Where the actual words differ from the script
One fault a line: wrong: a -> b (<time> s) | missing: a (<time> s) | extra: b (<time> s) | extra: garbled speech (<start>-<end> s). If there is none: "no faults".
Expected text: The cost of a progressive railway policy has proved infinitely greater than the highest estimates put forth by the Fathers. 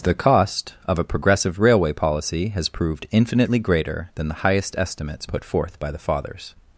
no faults